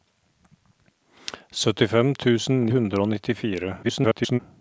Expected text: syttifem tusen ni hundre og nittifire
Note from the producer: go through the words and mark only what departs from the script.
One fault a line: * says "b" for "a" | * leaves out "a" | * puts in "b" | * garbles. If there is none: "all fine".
* leaves out "ni"
* garbles